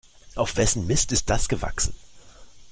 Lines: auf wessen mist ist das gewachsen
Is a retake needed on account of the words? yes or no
no